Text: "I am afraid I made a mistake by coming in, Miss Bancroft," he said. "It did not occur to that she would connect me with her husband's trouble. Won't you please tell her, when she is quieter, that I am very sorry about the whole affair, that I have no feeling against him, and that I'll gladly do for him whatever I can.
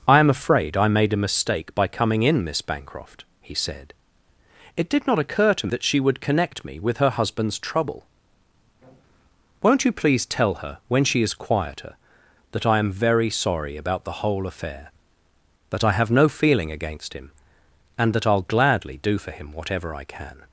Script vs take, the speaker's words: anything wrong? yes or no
no